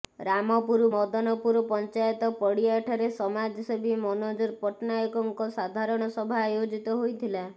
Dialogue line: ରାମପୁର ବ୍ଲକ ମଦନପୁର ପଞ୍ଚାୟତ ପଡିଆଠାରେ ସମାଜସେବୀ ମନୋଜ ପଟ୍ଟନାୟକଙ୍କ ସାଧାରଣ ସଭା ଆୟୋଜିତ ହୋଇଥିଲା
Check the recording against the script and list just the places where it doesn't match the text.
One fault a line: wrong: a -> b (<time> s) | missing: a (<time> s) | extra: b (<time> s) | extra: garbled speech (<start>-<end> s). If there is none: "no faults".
missing: ବ୍ଲକ (0.8 s)